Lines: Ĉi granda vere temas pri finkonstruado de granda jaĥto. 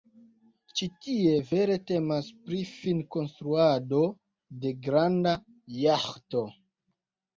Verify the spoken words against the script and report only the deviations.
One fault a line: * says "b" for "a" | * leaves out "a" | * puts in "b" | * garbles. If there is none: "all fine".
* says "tie" for "granda"